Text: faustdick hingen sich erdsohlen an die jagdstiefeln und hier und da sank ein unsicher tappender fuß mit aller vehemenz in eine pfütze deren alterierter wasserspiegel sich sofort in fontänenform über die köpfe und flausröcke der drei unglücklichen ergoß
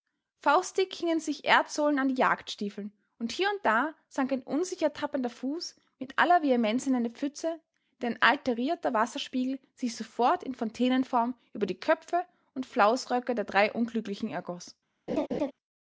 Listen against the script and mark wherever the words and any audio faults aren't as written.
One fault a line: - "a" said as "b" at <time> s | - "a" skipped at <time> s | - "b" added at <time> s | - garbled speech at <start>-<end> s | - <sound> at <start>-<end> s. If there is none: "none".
- laugh at 15.1-15.5 s